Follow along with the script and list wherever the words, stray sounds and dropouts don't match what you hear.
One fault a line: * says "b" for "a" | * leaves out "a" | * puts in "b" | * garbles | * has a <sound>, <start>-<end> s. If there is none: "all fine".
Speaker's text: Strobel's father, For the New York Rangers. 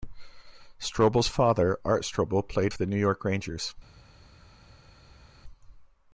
* puts in "Art Strobel played"